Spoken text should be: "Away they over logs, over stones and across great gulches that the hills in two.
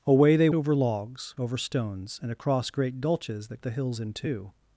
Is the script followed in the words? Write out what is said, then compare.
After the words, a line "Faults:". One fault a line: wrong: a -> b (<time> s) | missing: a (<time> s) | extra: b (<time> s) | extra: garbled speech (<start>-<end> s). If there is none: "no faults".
"Away they over logs, over stones and across great gulches that the hills in two.
Faults:
no faults